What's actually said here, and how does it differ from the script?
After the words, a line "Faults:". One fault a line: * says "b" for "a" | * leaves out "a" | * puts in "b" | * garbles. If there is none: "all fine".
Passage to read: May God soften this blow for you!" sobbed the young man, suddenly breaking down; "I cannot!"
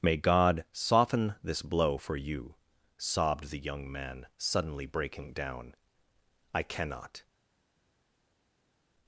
May God soften this blow for you!" sobbed the young man, suddenly breaking down; "I cannot!"
Faults:
all fine